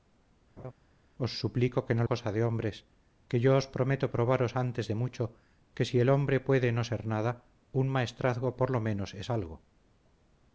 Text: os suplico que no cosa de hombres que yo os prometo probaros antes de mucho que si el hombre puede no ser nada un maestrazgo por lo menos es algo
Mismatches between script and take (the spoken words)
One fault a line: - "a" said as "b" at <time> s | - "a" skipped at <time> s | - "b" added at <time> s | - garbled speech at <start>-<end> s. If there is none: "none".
none